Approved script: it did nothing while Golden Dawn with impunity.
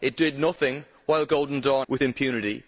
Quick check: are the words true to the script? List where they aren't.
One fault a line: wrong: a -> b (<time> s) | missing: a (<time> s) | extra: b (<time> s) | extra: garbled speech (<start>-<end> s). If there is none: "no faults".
no faults